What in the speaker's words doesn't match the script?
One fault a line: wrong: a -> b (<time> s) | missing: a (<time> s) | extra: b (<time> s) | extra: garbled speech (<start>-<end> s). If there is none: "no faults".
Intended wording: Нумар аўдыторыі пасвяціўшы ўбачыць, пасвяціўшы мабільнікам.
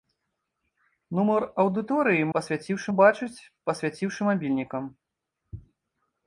no faults